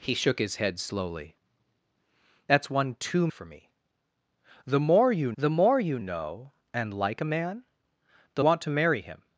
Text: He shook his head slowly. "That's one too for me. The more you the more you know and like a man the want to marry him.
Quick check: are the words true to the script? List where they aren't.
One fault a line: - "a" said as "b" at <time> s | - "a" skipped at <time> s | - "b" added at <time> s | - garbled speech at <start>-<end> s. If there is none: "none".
none